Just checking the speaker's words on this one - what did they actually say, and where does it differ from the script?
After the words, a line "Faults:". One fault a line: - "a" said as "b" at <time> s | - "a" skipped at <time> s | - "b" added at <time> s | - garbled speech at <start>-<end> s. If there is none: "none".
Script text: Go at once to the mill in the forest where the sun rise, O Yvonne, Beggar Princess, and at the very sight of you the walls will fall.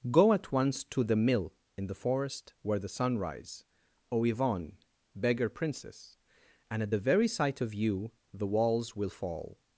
Go at once to the mill in the forest where the sun rise, O Yvonne, Beggar Princess, and at the very sight of you the walls will fall.
Faults:
none